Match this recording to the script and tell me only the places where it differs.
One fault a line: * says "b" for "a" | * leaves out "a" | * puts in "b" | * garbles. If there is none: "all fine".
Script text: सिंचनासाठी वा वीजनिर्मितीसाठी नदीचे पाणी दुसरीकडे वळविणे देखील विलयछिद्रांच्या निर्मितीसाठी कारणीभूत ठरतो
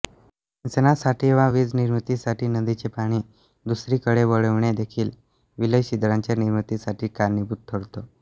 all fine